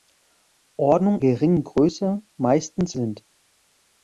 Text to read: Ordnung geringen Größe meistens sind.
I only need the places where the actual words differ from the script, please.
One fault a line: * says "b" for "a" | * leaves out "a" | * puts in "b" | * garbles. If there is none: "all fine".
all fine